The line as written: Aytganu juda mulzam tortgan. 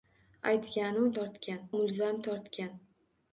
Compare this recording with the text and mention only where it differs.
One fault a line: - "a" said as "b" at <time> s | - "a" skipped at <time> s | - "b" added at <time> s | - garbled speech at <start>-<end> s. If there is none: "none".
- "juda" said as "tortgan" at 1.2 s